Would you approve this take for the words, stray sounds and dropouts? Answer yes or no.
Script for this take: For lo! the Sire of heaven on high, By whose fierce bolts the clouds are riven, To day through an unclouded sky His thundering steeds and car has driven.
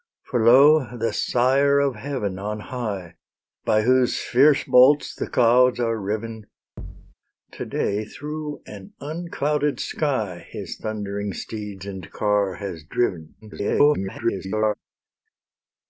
no